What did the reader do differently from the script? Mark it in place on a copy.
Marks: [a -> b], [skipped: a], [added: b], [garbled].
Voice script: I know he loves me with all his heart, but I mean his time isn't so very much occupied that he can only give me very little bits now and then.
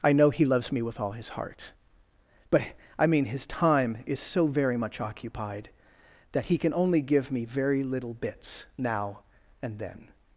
I know he loves me with all his heart, but I mean his time [isn't -> is] so very much occupied that he can only give me very little bits now and then.